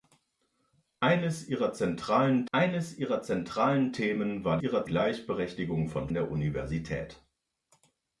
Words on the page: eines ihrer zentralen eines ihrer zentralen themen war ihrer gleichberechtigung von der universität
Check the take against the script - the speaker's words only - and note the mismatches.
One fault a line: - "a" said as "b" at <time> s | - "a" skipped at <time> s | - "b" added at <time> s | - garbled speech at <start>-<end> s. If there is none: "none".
none